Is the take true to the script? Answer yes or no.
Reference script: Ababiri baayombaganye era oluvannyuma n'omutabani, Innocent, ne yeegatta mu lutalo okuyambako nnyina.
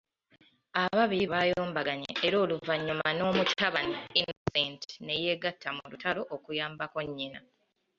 yes